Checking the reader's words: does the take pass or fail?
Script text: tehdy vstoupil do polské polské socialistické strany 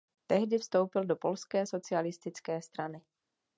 fail